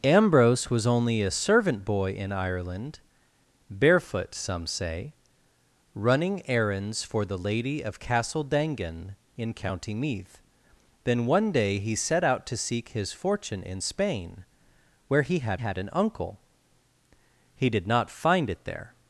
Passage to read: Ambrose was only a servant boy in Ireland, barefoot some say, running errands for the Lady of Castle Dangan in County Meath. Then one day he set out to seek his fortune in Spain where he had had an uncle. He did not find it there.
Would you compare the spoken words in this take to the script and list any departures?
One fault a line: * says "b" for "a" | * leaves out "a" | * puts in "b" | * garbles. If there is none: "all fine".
all fine